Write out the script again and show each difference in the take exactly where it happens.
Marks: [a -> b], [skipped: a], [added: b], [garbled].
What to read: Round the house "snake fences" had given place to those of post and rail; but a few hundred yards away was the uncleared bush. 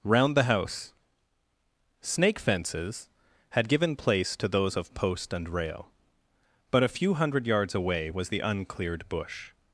Round the house "snake fences" had given place to those of post and rail; but a few hundred yards away was the uncleared bush.